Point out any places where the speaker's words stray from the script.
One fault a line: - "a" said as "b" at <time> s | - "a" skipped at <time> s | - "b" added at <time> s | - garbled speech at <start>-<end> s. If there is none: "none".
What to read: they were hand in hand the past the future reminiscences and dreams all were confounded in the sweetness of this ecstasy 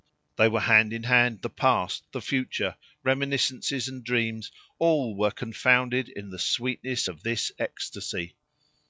none